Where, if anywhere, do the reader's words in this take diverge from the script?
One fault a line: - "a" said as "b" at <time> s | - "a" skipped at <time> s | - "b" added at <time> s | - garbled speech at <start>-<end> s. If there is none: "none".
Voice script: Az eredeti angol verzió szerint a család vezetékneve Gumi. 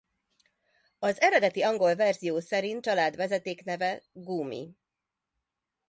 - "a" skipped at 2.9 s